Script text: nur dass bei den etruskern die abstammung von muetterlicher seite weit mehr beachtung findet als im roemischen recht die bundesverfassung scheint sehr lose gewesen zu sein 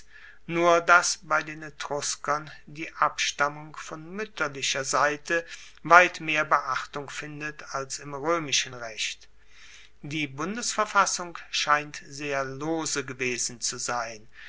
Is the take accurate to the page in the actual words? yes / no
yes